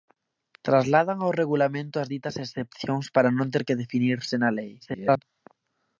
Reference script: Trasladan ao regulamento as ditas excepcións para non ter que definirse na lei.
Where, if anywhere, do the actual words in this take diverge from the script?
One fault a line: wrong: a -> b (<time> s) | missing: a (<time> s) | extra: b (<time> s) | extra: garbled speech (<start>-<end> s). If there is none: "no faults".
extra: garbled speech (4.8-5.2 s)